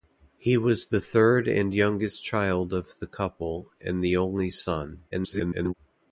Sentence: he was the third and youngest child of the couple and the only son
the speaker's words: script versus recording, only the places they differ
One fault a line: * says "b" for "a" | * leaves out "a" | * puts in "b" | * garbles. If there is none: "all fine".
* garbles